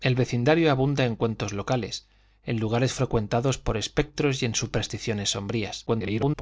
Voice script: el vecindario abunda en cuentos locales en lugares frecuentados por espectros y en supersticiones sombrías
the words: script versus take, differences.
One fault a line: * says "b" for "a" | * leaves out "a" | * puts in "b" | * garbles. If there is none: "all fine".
* garbles